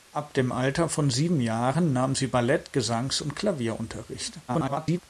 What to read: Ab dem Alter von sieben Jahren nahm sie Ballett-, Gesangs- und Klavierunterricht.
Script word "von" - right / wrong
right